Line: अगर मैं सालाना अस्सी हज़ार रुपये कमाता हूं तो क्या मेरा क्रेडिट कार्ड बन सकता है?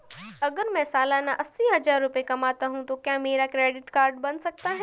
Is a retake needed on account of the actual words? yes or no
no